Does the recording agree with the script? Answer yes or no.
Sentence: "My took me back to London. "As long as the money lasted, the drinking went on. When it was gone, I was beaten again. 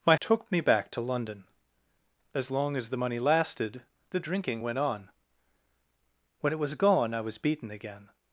yes